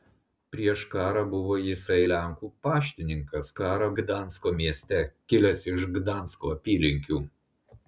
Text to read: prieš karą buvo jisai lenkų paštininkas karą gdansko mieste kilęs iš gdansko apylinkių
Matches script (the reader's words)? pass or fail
pass